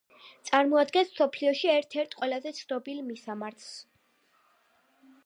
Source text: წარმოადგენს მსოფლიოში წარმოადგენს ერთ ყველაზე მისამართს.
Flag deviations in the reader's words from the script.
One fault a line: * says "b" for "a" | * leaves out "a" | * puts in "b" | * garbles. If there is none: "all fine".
* says "ერთ" for "წარმოადგენს"
* puts in "ცნობილ"